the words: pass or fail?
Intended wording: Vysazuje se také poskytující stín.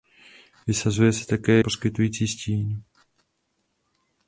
pass